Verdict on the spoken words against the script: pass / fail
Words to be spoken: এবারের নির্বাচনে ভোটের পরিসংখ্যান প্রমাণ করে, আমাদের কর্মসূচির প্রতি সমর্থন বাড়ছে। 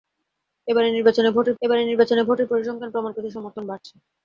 fail